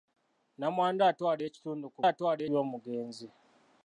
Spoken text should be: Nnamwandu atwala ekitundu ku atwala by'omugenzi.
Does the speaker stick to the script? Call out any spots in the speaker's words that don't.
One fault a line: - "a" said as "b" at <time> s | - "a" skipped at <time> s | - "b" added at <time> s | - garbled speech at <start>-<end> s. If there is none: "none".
none